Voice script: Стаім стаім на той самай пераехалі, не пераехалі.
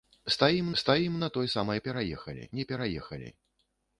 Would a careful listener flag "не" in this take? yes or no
no